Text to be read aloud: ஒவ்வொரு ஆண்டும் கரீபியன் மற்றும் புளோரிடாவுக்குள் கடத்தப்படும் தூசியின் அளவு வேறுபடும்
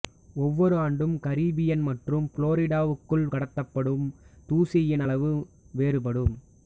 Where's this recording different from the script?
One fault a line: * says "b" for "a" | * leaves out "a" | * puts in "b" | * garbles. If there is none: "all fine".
all fine